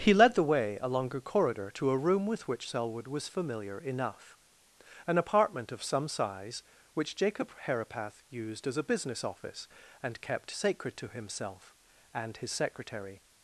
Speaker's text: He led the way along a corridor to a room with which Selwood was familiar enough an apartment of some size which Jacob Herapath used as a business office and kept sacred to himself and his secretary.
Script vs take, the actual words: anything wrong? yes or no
no